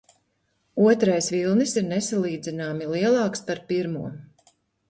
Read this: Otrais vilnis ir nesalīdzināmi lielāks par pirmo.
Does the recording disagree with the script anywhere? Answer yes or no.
no